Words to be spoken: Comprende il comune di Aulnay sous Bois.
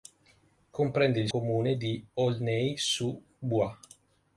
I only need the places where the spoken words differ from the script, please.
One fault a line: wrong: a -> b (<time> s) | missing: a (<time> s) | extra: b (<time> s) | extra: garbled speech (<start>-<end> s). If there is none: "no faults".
no faults